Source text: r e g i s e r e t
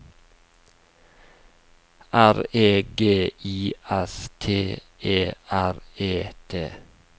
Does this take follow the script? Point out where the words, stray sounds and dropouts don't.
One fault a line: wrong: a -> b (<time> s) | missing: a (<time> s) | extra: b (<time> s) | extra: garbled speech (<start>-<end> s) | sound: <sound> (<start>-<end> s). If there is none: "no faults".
extra: t (4.4 s)